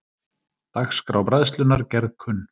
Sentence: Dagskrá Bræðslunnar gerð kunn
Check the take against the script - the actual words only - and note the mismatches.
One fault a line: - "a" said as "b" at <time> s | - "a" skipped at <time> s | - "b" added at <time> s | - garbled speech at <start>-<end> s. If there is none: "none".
none